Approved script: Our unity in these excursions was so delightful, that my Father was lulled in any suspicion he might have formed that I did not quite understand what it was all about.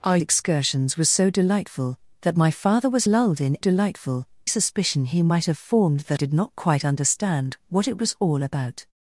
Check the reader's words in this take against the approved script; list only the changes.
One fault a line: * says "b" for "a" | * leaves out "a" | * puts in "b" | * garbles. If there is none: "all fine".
* leaves out "unity in these"
* says "delightful" for "any"
* leaves out "I"